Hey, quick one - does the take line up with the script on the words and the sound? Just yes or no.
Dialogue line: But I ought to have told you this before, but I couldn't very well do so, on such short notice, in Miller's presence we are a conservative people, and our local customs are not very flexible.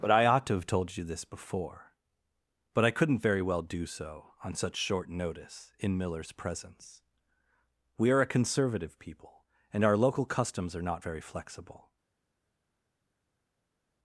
yes